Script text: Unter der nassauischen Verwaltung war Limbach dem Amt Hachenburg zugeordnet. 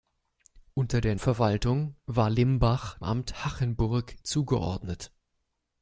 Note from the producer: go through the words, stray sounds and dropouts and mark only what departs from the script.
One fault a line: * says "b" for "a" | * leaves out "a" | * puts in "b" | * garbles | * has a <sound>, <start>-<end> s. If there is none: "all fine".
* leaves out "nassauischen"
* leaves out "dem"